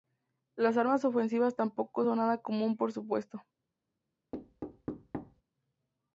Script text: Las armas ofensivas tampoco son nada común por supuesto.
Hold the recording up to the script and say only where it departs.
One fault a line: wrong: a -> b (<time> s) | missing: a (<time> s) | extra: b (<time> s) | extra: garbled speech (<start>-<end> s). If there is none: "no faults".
no faults